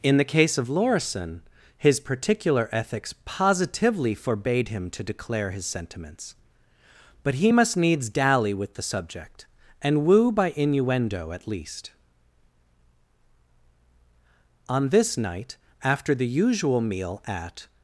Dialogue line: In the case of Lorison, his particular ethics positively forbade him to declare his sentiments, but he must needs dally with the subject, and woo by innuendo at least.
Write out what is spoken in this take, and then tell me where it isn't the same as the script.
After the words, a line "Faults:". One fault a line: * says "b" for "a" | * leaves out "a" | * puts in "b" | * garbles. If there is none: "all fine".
In the case of Lorison, his particular ethics positively forbade him to declare his sentiments, but he must needs dally with the subject, and woo by innuendo at least. On this night, after the usual meal at
Faults:
* puts in "On this night after the usual meal at"